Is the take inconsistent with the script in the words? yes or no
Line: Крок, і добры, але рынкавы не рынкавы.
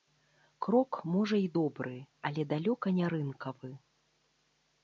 yes